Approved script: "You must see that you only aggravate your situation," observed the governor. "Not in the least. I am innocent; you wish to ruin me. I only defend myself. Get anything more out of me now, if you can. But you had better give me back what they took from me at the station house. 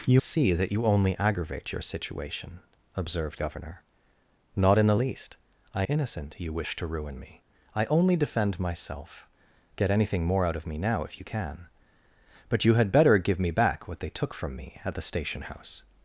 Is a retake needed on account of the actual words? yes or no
yes